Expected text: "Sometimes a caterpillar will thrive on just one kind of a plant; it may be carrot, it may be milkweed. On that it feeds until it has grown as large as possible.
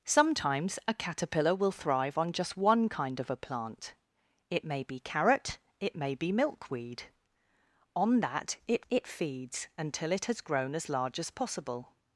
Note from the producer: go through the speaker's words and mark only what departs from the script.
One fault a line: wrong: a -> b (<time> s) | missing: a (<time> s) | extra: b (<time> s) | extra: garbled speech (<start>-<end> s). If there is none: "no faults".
extra: it (8.9 s)